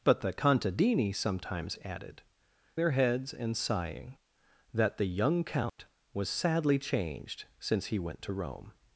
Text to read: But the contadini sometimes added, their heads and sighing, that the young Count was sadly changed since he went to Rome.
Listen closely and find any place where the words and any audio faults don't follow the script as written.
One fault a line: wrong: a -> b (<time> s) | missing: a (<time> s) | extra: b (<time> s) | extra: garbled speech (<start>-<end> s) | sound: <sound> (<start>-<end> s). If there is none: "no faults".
sound: dropout (5.7-5.8 s)